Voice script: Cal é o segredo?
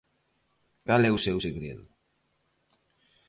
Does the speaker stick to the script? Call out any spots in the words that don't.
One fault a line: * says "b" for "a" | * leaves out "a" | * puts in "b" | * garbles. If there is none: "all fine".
* puts in "seu"